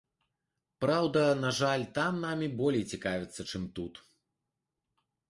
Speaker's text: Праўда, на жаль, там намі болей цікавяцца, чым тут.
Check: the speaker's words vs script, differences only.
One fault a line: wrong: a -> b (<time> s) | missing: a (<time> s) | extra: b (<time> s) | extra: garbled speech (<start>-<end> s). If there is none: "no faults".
no faults